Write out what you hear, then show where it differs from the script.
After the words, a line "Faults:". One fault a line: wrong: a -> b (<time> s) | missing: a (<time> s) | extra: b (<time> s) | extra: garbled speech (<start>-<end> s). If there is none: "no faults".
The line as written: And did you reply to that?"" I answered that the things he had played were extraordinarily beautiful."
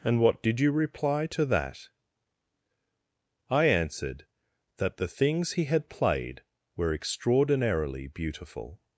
And what did you reply to that?"" I answered that the things he had played were extraordinarily beautiful."
Faults:
extra: what (0.2 s)